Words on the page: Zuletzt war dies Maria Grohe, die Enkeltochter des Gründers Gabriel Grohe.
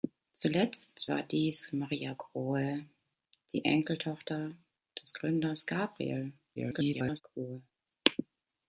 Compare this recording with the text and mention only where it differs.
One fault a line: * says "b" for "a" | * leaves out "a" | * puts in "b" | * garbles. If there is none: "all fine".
* garbles